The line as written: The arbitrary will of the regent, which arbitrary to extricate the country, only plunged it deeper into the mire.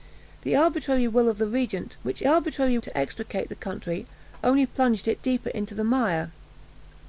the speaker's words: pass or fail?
pass